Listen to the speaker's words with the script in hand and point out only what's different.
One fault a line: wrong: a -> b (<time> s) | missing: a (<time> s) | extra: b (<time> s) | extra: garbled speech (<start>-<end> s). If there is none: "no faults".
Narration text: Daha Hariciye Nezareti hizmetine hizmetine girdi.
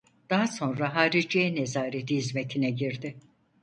extra: sonra (0.5 s)
missing: hizmetine (2.7 s)